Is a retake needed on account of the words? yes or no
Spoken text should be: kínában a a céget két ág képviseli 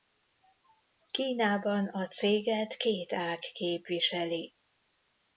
yes